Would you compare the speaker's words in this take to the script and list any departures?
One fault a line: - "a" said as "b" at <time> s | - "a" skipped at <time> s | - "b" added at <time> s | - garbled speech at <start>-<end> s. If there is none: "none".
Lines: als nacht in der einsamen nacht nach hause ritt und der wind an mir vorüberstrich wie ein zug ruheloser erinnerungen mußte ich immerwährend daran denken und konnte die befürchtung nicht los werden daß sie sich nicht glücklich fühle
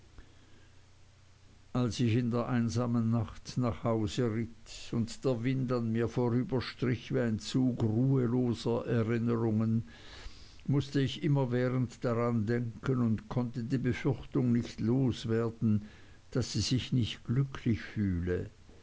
- "nacht" said as "ich" at 2.0 s